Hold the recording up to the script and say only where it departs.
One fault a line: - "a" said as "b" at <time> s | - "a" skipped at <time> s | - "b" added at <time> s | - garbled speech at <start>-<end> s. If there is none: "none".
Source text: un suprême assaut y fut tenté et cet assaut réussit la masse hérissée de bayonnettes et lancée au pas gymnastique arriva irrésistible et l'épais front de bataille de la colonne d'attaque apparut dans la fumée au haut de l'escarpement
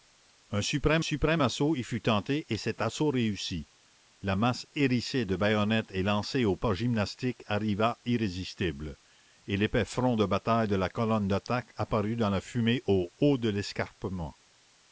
- "suprême" added at 1.0 s